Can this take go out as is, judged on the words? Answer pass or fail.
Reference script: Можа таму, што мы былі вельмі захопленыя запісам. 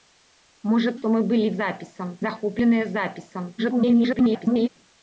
fail